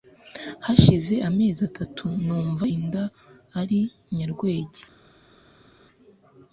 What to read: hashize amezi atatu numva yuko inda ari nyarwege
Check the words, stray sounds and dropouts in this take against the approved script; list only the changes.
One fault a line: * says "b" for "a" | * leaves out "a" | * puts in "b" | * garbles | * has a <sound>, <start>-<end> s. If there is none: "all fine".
* leaves out "yuko"